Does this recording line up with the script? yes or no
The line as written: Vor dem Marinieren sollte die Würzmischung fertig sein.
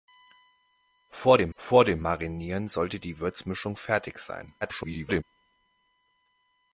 no